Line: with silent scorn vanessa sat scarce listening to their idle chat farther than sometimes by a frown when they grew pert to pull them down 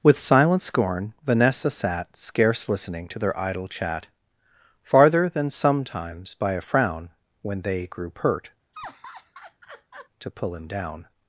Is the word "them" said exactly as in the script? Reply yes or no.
no